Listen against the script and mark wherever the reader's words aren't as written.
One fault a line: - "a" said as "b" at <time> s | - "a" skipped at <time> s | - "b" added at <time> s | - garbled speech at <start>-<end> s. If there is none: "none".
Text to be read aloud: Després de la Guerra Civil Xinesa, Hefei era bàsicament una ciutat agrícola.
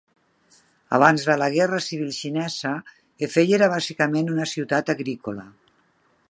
- "Després" said as "Abans" at 1.0 s